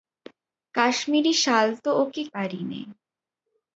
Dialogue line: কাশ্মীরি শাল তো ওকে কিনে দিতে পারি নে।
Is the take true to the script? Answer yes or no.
no